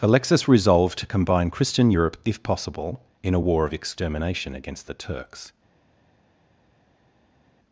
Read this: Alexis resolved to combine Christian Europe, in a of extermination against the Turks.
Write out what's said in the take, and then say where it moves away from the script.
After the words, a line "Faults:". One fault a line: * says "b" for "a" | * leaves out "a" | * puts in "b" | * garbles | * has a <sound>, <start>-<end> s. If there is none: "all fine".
Alexis resolved to combine Christian Europe, if possible, in a war of extermination against the Turks.
Faults:
* puts in "if possible"
* puts in "war"